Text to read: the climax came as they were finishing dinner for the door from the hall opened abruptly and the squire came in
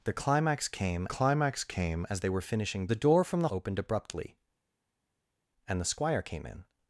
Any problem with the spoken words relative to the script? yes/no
yes